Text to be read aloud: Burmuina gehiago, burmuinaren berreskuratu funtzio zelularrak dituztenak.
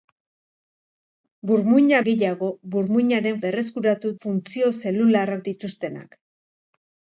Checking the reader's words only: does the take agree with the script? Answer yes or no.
yes